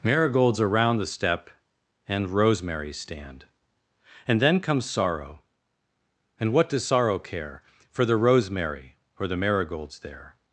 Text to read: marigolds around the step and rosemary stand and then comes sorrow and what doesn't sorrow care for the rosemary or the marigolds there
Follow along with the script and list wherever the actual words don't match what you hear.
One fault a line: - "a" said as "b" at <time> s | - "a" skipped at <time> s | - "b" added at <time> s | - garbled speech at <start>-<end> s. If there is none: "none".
- "doesn't" said as "does" at 6.7 s